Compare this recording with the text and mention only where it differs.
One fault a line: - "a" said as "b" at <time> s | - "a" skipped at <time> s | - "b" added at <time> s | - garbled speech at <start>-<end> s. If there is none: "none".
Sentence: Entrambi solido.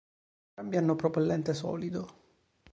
- "hanno propellente" added at 0.8 s